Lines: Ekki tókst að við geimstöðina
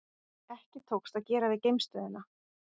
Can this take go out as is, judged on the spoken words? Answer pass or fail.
fail